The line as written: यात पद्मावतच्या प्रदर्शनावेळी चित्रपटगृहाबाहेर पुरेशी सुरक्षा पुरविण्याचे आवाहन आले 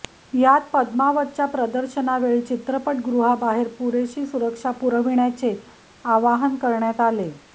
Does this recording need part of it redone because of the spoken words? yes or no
yes